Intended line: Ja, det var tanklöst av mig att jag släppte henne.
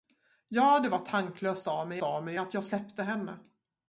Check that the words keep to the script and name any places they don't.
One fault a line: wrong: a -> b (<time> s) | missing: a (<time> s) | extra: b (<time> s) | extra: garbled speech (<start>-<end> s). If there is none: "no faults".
extra: av mig (2.0 s)